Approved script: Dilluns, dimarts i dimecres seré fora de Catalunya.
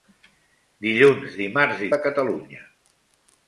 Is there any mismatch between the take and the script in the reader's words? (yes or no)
yes